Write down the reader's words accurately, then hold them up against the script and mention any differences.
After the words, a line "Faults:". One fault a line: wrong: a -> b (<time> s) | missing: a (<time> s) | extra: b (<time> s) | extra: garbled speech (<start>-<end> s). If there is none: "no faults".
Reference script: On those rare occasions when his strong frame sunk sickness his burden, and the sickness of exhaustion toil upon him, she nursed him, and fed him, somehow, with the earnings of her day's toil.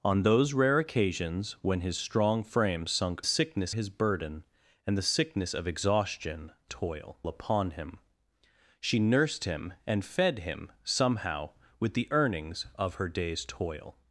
On those rare occasions when his strong frame sunk sickness his burden, and the sickness of exhaustion toil upon him, she nursed him, and fed him, somehow, with the earnings of her day's toil.
Faults:
no faults